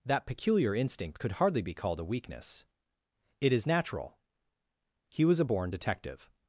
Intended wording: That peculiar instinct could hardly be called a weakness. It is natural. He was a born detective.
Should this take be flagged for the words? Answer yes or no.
no